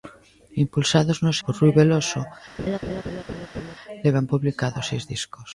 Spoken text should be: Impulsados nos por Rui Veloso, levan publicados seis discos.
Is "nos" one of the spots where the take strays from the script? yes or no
no